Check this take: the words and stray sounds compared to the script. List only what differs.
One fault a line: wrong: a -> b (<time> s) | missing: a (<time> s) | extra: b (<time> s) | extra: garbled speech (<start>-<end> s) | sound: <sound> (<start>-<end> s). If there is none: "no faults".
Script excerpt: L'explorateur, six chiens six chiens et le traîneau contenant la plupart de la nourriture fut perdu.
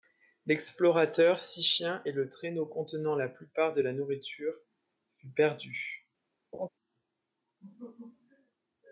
missing: six chiens (2.0 s)
sound: laugh (6.5-6.7 s)